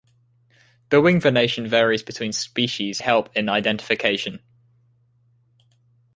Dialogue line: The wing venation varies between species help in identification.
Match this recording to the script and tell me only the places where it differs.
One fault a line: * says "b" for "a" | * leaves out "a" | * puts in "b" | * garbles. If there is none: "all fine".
all fine